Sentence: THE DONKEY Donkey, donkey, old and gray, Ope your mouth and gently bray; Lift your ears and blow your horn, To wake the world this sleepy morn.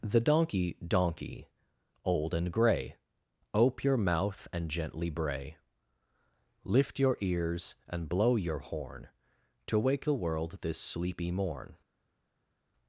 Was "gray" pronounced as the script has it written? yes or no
yes